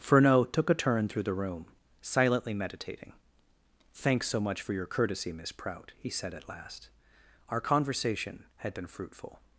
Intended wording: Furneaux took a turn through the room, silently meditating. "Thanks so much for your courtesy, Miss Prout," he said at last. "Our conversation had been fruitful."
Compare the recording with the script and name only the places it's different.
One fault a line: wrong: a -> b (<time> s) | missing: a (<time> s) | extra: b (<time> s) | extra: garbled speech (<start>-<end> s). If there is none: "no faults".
no faults